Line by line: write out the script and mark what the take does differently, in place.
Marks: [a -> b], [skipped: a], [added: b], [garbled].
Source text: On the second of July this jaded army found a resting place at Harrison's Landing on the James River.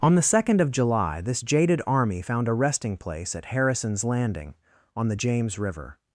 On the second of July this jaded army found a resting place at Harrison's Landing on the James River.